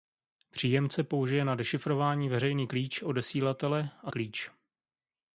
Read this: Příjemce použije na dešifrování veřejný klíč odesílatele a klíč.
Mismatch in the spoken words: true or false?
false